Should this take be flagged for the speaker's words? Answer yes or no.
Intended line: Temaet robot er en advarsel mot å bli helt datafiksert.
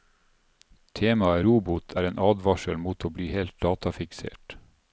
no